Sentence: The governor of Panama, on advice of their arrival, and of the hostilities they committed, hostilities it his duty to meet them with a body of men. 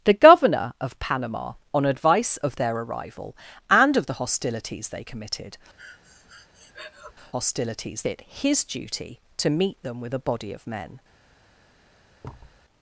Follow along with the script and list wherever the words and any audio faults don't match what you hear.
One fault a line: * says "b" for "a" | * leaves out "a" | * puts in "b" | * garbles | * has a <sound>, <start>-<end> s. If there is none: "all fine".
* has a breath, 5.8-7.1 s
* has a thud, 12.2-12.6 s